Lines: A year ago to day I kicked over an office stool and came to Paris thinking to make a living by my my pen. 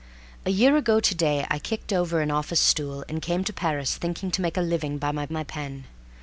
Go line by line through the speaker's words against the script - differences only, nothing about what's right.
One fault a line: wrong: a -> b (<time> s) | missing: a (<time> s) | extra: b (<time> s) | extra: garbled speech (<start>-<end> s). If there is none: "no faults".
no faults